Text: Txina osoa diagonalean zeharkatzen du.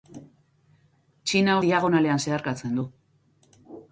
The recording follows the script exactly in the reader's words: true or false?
false